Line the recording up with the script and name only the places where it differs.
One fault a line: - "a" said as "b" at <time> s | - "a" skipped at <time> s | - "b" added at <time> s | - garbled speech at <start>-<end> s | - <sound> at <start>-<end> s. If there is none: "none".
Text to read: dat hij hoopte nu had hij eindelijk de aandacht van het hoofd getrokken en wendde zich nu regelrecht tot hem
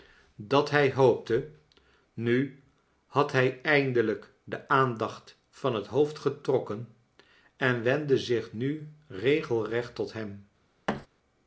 - thud at 10.9-11.1 s